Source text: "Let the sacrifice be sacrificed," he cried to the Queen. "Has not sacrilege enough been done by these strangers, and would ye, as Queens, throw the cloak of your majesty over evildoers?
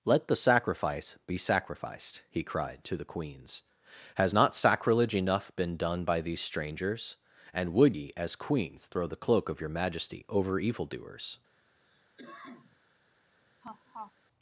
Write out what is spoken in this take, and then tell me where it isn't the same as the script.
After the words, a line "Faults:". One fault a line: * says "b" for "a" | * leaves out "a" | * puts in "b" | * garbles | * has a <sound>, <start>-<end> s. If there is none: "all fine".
"Let the sacrifice be sacrificed," he cried to the Queens. "Has not sacrilege enough been done by these strangers, and would ye, as Queens, throw the cloak of your majesty over evildoers?
Faults:
* says "Queens" for "Queen"
* has a cough, 11.8-12.8 s
* has a laugh, 13.6-14.1 s